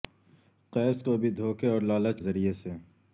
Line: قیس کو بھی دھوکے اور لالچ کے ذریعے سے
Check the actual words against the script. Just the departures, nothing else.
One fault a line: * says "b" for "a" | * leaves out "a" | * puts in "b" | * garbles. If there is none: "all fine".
* leaves out "کے"